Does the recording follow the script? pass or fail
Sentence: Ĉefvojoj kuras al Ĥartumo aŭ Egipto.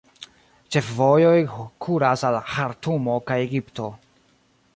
fail